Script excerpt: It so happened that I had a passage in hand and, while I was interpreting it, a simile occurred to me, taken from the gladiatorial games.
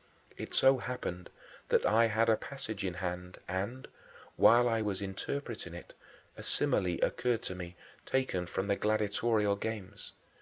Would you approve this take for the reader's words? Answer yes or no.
yes